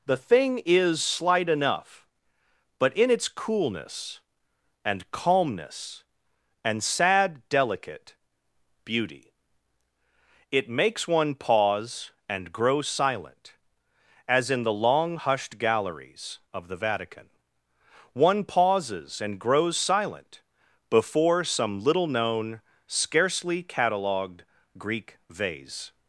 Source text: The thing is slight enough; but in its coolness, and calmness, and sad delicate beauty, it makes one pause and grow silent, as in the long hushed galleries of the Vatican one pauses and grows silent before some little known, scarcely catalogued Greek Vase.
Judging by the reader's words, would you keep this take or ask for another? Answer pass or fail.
pass